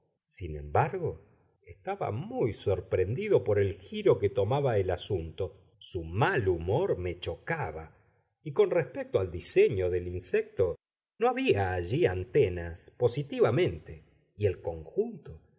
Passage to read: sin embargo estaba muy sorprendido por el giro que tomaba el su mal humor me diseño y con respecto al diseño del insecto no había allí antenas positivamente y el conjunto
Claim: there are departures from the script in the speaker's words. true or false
true